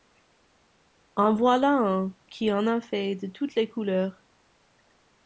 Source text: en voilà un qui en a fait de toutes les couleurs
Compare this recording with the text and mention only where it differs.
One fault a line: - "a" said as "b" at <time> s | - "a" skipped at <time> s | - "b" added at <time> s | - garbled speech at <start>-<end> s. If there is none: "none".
none